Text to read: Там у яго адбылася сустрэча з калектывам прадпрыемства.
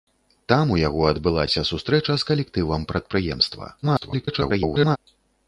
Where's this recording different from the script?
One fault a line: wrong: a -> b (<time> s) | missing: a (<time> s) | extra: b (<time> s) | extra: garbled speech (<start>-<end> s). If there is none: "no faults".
extra: garbled speech (3.8-5.0 s)